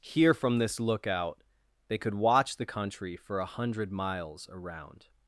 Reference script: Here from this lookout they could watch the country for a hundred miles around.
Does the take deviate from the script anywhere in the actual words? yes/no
no